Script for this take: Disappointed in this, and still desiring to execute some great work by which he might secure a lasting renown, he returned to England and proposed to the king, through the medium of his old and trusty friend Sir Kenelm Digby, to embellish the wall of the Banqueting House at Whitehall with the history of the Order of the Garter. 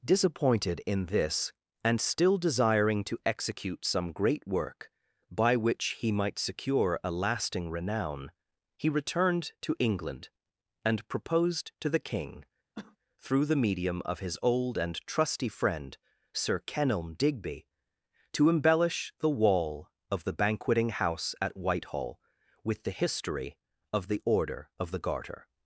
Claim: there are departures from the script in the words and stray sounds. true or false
true